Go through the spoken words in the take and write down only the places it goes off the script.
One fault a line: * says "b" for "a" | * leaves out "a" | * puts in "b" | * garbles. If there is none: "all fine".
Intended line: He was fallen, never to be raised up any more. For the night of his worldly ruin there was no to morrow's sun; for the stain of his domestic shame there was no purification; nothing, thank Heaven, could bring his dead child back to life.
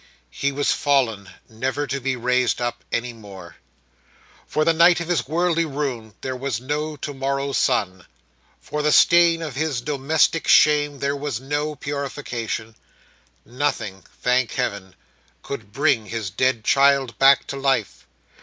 all fine